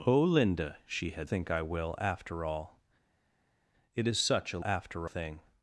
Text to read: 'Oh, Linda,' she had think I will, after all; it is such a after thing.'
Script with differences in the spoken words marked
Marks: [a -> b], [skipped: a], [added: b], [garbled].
'Oh, Linda,' she had think I will, after all; it is such a after thing.'